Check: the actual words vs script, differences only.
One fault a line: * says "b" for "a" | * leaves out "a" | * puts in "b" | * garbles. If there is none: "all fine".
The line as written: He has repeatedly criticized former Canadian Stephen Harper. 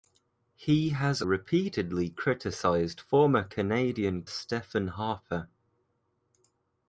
all fine